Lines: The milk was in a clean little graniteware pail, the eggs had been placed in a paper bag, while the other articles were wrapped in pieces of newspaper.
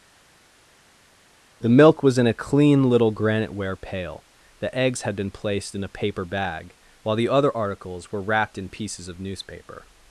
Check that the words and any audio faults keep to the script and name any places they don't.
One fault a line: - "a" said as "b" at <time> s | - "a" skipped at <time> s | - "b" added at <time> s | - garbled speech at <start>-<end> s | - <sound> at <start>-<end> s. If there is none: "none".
none